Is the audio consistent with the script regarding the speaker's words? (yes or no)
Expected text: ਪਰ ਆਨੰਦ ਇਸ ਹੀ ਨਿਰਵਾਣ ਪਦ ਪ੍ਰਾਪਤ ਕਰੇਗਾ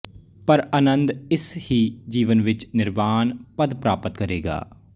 no